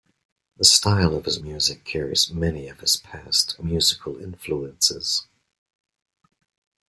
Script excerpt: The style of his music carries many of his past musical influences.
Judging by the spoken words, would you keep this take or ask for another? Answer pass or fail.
pass